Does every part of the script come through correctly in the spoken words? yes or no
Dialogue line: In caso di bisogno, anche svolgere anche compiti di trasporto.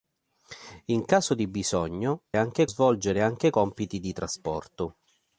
yes